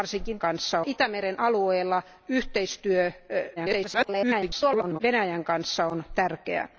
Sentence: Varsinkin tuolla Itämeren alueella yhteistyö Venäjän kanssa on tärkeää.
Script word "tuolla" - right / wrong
wrong